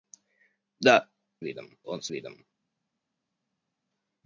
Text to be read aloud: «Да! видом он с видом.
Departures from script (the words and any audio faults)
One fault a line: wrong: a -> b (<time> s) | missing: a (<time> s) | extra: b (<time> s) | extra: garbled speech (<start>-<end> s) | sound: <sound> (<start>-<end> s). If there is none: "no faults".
no faults